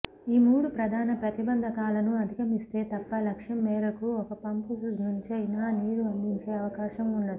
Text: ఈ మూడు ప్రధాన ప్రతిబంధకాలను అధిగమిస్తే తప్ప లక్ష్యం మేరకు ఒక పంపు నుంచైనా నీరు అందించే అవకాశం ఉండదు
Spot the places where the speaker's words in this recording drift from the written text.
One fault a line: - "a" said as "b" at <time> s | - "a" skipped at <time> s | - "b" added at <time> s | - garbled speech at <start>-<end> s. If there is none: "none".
none